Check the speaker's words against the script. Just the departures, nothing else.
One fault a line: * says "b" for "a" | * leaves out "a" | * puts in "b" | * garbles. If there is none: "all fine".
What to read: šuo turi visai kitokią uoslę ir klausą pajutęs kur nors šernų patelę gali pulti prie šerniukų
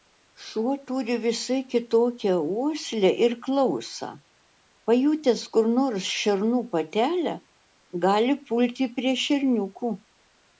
all fine